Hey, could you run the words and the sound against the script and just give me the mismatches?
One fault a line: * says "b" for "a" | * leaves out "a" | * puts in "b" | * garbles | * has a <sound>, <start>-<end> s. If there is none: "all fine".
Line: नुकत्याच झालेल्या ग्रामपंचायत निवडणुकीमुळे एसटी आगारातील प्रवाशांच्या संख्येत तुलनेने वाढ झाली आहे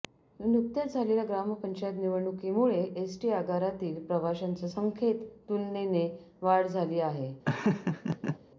* has a laugh, 7.4-8.4 s